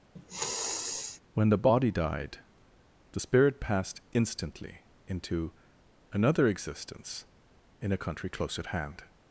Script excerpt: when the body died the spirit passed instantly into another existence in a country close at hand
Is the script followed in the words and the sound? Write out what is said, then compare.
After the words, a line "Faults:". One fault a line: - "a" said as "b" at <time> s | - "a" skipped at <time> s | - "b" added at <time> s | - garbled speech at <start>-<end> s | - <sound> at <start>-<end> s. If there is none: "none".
when the body died the spirit passed instantly into another existence in a country close at hand
Faults:
- sniff at 0.2-1.2 s